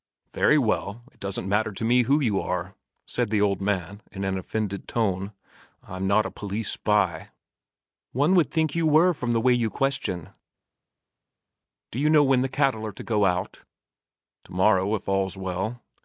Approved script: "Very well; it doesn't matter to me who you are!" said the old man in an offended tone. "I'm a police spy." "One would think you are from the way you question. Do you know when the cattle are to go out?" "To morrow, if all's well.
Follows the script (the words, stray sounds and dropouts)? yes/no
no